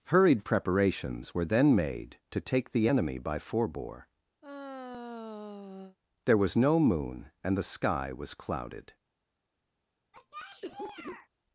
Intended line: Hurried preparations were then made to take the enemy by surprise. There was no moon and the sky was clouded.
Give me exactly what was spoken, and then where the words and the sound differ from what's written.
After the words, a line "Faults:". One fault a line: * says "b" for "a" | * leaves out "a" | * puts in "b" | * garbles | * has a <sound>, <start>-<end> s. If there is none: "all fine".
Hurried preparations were then made to take the enemy by forebore. There was no moon and the sky was clouded.
Faults:
* says "forebore" for "surprise"
* has a sigh, 4.4-6.0 s
* has a cough, 10.1-11.3 s